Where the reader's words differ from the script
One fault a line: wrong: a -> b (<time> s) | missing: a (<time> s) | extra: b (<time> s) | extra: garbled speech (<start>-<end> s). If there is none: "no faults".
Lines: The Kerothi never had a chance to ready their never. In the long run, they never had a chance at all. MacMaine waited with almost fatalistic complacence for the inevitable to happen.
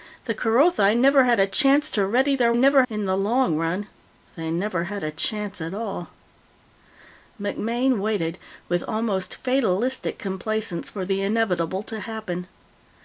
no faults